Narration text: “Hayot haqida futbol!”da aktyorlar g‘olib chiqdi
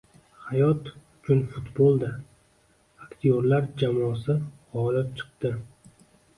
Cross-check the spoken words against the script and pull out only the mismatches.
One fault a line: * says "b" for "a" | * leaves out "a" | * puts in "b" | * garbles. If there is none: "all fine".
* says "uchun" for "haqida"
* puts in "jamoasi"